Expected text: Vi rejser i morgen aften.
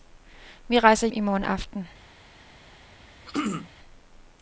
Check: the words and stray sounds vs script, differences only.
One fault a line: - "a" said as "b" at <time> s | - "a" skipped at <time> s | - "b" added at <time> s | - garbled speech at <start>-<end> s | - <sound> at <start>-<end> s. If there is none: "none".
- throat clearing at 3.3-3.7 s